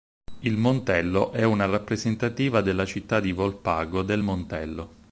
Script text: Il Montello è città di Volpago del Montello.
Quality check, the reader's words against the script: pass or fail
fail